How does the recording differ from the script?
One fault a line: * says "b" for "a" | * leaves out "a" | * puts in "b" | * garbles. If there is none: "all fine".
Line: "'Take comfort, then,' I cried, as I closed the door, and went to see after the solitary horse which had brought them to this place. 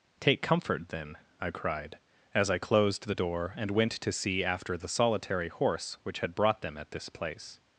* says "at" for "to"